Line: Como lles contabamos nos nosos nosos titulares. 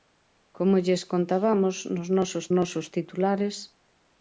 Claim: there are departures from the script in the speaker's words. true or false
false